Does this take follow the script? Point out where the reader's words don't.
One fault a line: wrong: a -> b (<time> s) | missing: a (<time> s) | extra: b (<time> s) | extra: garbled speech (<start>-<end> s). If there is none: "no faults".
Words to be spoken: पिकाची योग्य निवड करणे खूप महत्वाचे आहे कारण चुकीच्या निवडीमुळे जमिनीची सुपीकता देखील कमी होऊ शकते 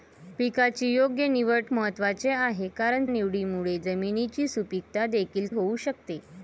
missing: करणे खूप (1.6 s)
missing: चुकीच्या (3.1 s)
missing: कमी (5.5 s)